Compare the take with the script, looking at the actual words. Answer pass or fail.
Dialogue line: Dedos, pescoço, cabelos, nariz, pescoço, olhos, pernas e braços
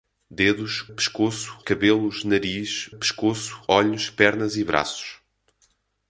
pass